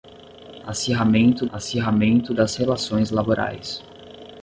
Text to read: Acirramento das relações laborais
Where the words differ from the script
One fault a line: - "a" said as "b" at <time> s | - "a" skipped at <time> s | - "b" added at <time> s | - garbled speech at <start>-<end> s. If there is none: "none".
- "acirramento" added at 1.5 s